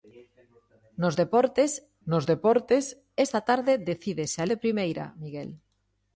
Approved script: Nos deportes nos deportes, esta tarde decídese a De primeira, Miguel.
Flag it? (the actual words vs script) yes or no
no